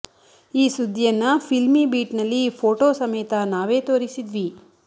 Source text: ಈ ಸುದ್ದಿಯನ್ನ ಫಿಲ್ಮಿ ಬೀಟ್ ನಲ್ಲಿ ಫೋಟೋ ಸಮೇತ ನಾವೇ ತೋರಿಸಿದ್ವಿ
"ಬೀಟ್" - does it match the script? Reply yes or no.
yes